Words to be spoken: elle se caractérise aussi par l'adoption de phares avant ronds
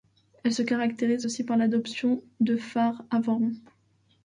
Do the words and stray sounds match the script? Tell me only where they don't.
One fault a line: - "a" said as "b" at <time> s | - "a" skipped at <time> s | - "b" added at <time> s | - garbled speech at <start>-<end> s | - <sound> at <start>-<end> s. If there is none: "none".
none